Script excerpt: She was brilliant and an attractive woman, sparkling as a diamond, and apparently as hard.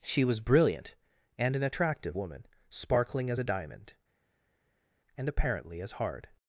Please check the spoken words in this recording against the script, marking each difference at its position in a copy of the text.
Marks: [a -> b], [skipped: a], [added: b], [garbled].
She was brilliant and an attractive woman, sparkling as a diamond, and apparently as hard.